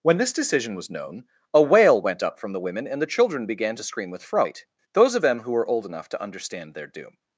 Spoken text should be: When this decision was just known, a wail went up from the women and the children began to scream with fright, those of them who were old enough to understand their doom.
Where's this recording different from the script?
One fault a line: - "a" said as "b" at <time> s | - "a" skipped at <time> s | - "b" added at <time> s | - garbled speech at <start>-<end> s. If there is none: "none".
- "just" skipped at 0.9 s